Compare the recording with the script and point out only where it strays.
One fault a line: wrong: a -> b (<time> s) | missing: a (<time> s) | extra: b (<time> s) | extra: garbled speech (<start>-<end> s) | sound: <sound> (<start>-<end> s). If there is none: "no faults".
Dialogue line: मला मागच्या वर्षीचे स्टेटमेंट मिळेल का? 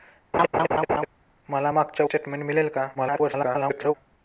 sound: laugh (0.3-1.1 s)
missing: वर्षीचे (2.1 s)
extra: garbled speech (2.9-3.9 s)